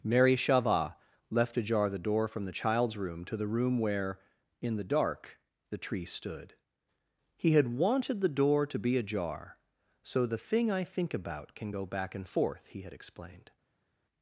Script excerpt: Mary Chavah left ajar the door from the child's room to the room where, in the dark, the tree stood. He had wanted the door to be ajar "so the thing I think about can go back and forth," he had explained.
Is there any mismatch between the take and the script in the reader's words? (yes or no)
no